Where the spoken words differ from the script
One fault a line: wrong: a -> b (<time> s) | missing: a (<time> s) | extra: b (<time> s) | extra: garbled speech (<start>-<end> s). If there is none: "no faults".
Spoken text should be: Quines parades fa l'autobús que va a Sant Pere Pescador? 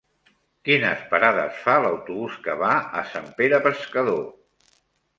no faults